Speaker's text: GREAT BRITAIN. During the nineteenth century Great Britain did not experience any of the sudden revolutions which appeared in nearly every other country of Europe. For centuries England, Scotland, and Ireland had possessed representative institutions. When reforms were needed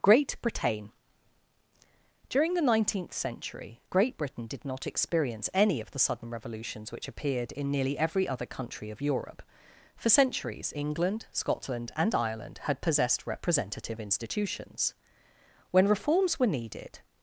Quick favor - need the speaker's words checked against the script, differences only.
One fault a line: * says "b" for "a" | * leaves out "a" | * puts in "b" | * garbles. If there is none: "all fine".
all fine